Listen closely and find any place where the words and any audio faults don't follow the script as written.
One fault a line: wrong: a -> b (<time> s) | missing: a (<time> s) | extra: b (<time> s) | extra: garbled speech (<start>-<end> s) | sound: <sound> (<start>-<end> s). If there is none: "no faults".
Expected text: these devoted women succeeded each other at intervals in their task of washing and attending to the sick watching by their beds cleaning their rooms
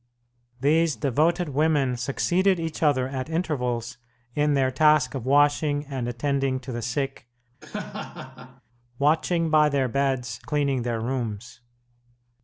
sound: laugh (7.6-8.6 s)